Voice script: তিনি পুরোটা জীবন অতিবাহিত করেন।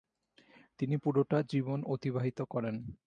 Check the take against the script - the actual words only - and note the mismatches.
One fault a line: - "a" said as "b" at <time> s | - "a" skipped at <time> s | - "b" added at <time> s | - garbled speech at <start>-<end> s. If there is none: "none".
none